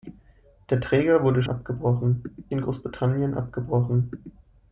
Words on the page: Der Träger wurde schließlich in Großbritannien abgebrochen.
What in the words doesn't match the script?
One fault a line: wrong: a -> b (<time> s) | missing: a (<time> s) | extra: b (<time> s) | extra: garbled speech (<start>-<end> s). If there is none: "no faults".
wrong: schließlich -> abgebrochen (1.5 s)